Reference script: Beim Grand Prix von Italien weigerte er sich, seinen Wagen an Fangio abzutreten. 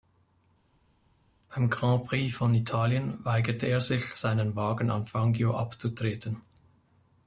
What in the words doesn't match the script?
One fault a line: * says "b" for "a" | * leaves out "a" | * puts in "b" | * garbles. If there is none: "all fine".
all fine